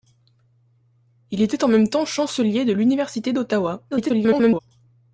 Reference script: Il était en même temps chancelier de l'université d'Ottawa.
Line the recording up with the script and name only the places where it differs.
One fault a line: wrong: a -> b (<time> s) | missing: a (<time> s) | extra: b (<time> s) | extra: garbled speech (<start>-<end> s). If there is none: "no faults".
extra: garbled speech (3.9-4.6 s)